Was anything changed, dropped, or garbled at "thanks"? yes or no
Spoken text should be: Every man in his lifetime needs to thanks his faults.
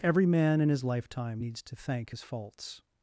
yes